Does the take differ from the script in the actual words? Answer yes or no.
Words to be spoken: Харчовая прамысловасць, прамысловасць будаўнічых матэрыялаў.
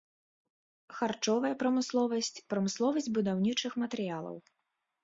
no